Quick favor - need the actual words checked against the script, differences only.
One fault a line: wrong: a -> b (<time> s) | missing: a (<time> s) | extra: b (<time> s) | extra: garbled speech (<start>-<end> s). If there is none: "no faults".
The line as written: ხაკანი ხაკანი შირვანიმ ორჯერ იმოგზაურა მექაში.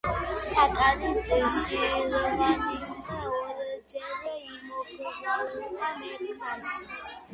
missing: ხაკანი (1.1 s)